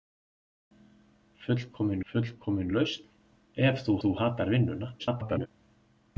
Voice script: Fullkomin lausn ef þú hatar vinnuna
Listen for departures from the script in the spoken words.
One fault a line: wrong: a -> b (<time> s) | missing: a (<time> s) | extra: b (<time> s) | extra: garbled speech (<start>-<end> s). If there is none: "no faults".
extra: fullkomin (2.1 s)
extra: þú (4.0 s)
extra: garbled speech (5.0-5.5 s)